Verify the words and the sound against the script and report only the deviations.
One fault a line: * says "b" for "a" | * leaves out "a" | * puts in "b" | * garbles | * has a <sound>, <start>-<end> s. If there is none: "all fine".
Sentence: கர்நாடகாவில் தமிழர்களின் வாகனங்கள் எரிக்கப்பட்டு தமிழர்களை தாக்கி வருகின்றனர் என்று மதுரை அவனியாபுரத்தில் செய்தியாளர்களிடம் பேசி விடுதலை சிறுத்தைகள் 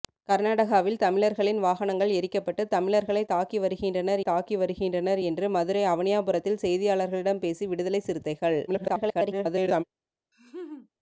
* puts in "தாக்கி வருகின்றனர்"
* garbles
* has a laugh, 10.3-10.9 s